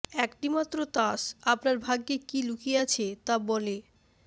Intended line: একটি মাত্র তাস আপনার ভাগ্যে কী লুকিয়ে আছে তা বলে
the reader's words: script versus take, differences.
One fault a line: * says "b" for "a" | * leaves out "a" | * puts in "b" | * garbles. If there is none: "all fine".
all fine